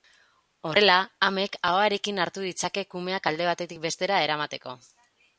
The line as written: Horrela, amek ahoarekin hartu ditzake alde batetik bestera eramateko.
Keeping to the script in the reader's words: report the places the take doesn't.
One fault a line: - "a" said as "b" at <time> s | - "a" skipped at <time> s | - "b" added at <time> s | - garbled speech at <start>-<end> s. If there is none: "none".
- "kumeak" added at 2.9 s